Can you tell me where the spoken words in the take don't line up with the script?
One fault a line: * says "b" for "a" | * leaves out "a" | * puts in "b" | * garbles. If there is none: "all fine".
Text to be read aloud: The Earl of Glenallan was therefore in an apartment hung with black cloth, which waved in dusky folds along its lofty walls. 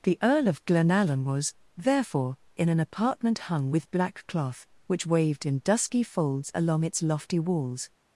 all fine